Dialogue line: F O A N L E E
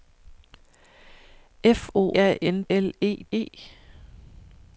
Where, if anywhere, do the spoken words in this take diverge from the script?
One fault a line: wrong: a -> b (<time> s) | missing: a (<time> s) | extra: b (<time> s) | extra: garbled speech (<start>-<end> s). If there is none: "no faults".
no faults